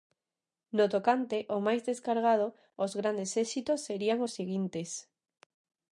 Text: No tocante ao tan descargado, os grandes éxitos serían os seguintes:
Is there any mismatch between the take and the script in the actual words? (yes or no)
yes